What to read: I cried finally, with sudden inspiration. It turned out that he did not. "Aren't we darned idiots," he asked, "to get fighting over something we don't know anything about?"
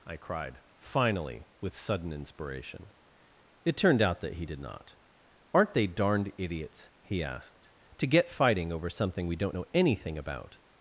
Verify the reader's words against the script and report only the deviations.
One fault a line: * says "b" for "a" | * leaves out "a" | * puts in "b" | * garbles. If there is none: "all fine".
* says "they" for "we"